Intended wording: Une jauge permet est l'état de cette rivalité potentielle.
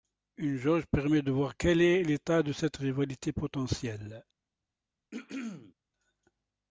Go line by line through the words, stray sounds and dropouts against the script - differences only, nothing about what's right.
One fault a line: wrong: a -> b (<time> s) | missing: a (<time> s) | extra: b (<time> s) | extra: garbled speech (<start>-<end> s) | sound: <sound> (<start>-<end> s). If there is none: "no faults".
extra: de voir quel (1.2 s)
sound: throat clearing (5.1-5.7 s)